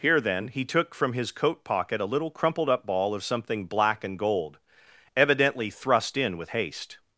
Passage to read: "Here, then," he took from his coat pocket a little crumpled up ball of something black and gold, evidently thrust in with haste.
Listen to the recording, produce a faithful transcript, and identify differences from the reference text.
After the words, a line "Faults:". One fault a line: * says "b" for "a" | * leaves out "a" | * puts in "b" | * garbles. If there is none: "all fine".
"Here, then," he took from his coat pocket a little crumpled up ball of something black and gold, evidently thrust in with haste.
Faults:
all fine